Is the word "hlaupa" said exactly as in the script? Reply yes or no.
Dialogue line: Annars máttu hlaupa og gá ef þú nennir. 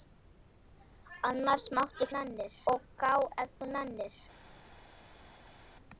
no